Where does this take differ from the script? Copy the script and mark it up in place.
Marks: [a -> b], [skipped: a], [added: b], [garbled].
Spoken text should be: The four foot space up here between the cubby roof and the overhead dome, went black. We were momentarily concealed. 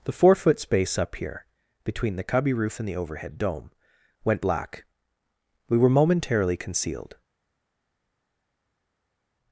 The four foot space up here between the cubby roof and the overhead dome, went black. We were momentarily concealed.